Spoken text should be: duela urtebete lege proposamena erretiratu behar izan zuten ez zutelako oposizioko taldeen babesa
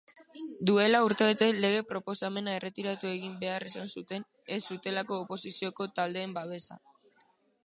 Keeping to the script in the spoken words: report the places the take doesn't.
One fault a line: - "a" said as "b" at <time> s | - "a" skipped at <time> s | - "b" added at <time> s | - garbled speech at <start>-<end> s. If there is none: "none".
- "egin" added at 3.1 s